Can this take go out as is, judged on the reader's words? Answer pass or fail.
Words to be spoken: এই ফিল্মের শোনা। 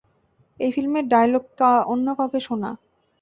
fail